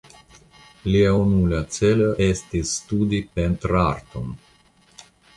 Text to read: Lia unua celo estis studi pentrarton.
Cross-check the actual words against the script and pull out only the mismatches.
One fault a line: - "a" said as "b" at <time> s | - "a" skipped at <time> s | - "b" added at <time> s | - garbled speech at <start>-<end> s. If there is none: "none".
none